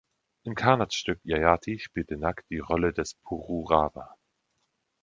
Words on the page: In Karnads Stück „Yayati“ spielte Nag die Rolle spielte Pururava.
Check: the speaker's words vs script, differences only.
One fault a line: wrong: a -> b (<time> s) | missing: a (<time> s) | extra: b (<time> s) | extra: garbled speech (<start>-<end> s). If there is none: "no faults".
wrong: spielte -> des (2.9 s)